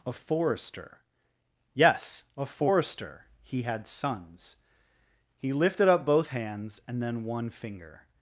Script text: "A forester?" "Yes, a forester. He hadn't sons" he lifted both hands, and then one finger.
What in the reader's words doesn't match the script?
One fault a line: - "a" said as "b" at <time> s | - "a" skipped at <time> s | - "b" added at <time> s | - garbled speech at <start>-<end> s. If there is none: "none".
- "hadn't" said as "had" at 3.6 s
- "up" added at 5.9 s